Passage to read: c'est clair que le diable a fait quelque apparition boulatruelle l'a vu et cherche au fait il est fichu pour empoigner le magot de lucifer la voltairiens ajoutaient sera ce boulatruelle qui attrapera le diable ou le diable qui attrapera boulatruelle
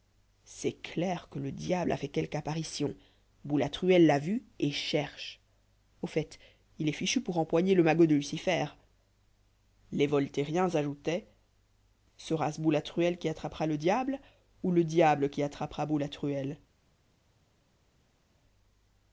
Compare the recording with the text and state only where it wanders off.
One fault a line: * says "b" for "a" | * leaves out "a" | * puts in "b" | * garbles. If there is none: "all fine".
* says "les" for "la"